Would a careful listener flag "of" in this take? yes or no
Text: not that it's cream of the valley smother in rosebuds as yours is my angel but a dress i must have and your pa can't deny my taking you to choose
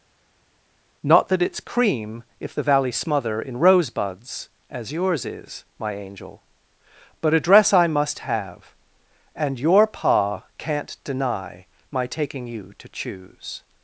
yes